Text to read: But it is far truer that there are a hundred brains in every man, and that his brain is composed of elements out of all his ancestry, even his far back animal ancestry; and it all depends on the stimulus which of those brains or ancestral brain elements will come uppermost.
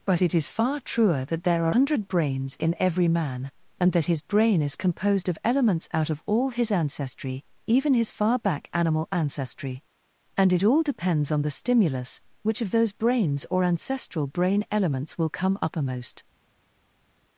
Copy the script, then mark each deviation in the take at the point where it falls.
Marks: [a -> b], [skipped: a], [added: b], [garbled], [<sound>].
But it is far truer that there are [skipped: a] hundred brains in every man, and that his brain is composed of elements out of all his ancestry, even his far back animal ancestry; and it all depends on the stimulus which of those brains or ancestral brain elements will come uppermost.